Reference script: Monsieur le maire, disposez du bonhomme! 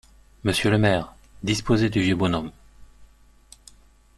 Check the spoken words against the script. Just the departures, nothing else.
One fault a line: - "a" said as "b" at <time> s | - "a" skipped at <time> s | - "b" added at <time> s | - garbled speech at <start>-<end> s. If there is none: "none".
- "vieux" added at 2.0 s